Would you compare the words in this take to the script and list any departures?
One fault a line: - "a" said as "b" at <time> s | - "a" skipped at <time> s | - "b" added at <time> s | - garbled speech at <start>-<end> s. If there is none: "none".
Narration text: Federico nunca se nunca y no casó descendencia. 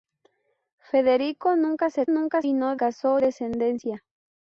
none